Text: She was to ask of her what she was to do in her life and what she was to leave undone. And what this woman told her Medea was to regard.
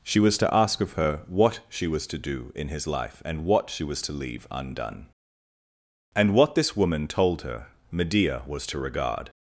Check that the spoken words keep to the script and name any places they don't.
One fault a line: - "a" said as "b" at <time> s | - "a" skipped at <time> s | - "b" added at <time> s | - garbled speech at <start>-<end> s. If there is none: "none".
- "her" said as "his" at 2.7 s